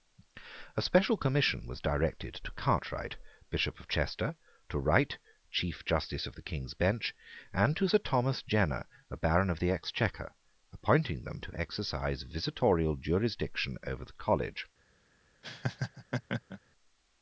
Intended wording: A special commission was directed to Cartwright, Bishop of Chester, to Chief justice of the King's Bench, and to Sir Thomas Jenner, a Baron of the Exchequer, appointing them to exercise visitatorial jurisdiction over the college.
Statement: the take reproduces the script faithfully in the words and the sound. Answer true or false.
false